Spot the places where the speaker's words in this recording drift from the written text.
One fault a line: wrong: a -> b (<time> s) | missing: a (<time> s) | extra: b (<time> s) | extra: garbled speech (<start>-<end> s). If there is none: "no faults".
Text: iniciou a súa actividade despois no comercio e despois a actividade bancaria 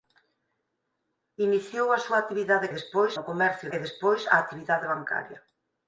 no faults